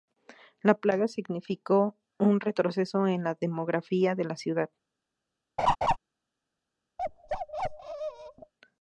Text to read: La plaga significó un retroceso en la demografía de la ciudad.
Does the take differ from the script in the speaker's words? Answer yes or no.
no